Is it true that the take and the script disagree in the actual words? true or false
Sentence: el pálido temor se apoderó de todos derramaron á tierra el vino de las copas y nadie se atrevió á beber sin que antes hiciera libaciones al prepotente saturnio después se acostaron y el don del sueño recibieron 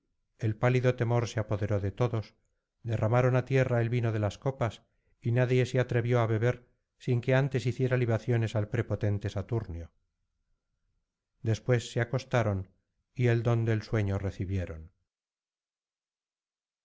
false